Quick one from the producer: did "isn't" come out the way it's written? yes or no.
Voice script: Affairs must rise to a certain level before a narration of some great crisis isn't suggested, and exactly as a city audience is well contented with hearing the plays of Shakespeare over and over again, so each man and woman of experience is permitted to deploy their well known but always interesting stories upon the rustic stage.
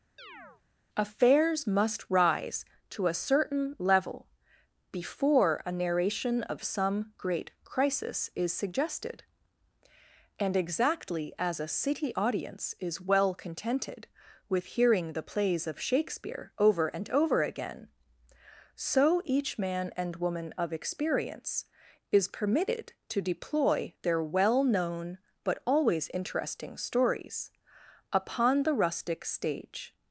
no